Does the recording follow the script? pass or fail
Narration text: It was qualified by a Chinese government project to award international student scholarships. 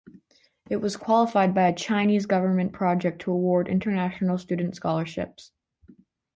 pass